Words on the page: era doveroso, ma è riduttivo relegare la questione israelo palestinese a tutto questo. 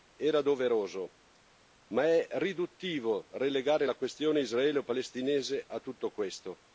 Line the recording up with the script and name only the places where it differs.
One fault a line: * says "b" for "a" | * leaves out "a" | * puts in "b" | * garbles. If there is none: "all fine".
all fine